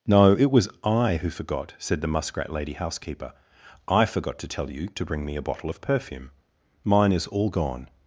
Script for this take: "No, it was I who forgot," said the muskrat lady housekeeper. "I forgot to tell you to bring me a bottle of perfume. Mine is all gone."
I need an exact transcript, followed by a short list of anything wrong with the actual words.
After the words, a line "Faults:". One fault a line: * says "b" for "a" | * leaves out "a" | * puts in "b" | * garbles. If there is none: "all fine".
"No, it was I who forgot," said the muskrat lady housekeeper. "I forgot to tell you to bring me a bottle of perfume. Mine is all gone."
Faults:
all fine